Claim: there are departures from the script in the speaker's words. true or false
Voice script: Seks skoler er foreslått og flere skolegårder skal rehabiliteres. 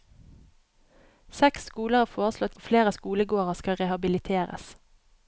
false